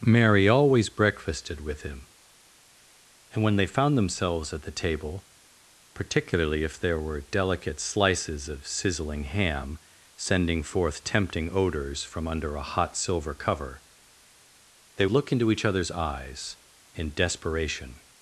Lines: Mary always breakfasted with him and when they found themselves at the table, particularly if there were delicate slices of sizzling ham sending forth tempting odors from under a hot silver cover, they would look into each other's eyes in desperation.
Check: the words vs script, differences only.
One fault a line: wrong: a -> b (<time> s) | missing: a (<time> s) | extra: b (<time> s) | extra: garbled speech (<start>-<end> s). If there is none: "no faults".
missing: would (15.1 s)